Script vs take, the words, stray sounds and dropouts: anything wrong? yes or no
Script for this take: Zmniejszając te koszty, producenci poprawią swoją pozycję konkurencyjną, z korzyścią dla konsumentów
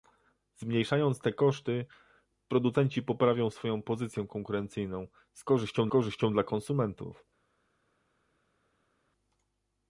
yes